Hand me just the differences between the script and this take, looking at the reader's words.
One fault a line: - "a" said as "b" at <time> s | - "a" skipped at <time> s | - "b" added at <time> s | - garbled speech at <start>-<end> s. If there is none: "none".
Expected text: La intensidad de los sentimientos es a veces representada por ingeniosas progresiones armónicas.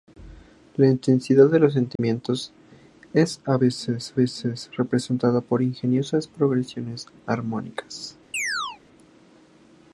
- "veces" added at 4.1 s